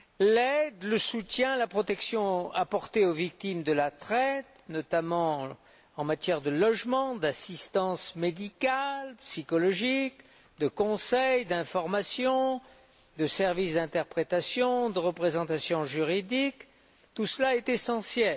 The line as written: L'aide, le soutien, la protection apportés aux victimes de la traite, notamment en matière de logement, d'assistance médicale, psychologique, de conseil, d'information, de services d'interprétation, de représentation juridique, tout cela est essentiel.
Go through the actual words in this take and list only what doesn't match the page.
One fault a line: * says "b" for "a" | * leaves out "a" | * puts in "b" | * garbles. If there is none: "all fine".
all fine